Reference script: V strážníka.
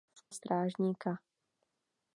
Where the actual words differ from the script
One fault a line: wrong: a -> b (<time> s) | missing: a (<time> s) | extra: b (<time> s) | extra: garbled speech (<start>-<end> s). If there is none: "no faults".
no faults